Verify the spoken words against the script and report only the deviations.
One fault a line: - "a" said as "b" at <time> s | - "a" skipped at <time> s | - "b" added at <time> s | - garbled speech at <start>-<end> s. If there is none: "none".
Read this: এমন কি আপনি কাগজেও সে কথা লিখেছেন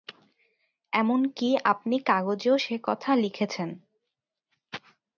none